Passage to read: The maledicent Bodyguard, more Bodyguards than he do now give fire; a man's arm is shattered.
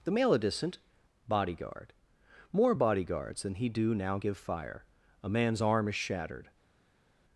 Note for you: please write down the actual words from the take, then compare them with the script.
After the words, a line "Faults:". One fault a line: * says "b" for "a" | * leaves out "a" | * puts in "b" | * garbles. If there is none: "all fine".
The maledicent Bodyguard, more Bodyguards than he do now give fire; a man's arm is shattered.
Faults:
all fine